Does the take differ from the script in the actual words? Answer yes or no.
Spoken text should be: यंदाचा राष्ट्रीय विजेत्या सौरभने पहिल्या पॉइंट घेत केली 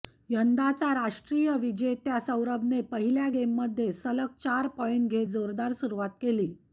yes